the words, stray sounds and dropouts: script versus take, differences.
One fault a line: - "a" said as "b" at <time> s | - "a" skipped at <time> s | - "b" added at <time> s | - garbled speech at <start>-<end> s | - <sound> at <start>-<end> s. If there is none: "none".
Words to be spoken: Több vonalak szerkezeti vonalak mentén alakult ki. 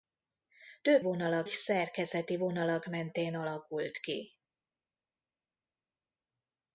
none